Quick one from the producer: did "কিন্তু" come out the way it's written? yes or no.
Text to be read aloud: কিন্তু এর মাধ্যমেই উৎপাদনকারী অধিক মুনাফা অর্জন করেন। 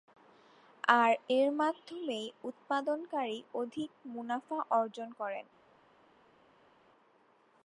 no